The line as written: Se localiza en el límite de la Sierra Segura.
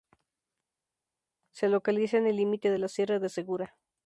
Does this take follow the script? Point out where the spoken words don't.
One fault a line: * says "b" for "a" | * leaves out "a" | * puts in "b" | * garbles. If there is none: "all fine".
* puts in "de"